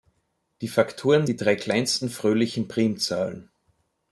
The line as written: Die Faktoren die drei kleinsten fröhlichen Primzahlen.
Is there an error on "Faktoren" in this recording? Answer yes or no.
no